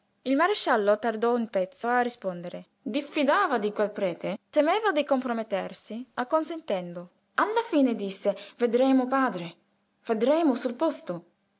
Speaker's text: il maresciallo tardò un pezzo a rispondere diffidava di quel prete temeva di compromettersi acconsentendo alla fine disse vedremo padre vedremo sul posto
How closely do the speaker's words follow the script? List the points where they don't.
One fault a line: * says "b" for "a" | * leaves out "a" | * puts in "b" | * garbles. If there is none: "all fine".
all fine